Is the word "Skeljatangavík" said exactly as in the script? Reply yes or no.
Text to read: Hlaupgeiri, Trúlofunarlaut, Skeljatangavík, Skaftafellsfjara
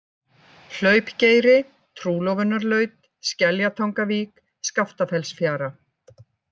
yes